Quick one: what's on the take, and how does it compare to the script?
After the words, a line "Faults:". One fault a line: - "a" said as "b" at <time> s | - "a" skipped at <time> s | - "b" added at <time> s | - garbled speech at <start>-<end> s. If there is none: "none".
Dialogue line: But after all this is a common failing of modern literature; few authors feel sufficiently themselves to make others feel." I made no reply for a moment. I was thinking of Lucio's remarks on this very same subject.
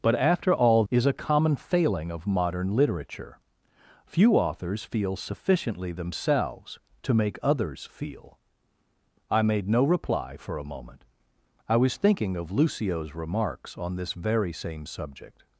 But after all is a common failing of modern literature; few authors feel sufficiently themselves to make others feel." I made no reply for a moment. I was thinking of Lucio's remarks on this very same subject.
Faults:
- "this" skipped at 0.8 s